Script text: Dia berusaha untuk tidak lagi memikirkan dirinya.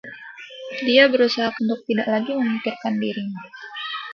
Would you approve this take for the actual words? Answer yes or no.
yes